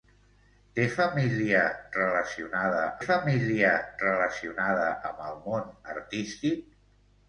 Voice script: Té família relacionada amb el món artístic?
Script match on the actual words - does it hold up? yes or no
no